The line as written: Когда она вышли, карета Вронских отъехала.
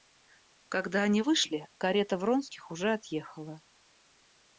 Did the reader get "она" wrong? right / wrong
wrong